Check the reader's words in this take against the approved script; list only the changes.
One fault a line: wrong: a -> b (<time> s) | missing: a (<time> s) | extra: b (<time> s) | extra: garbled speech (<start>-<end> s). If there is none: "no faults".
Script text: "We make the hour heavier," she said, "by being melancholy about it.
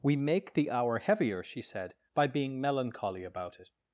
no faults